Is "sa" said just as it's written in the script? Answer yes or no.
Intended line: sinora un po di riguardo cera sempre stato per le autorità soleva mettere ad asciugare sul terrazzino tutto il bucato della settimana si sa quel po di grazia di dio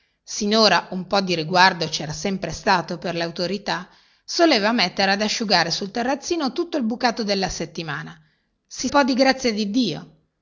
no